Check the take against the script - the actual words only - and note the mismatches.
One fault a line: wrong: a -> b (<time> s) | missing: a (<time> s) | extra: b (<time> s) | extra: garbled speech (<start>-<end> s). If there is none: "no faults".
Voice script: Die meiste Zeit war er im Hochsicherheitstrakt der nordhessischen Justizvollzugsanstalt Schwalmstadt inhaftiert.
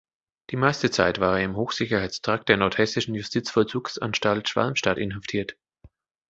no faults